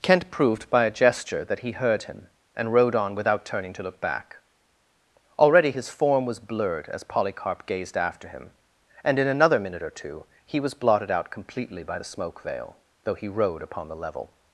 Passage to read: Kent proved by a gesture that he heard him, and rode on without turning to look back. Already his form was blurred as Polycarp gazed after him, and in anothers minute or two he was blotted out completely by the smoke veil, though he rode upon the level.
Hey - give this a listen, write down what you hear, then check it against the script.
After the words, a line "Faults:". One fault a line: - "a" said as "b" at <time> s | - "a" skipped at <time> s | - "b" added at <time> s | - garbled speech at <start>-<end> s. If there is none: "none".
Kent proved by a gesture that he heard him, and rode on without turning to look back. Already his form was blurred as Polycarp gazed after him, and in another minute or two he was blotted out completely by the smoke veil, though he rode upon the level.
Faults:
- "anothers" said as "another" at 9.3 s